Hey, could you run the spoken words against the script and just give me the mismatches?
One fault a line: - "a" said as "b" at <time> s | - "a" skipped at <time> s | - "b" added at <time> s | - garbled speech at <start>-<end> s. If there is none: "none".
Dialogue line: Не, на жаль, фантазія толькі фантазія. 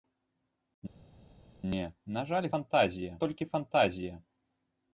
none